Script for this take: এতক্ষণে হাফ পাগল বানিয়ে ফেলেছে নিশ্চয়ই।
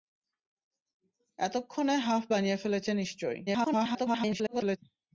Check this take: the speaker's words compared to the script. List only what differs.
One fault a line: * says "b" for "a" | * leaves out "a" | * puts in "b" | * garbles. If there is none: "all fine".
* leaves out "পাগল"
* garbles